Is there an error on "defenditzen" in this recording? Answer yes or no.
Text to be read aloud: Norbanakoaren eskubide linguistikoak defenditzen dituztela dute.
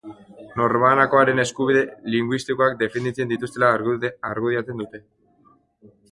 no